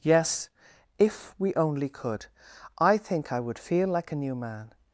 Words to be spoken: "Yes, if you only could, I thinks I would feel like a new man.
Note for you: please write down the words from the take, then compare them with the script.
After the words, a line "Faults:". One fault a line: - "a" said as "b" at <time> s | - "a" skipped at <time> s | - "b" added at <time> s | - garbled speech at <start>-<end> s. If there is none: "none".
"Yes, if we only could, I think I would feel like a new man.
Faults:
- "you" said as "we" at 1.4 s
- "thinks" said as "think" at 3.0 s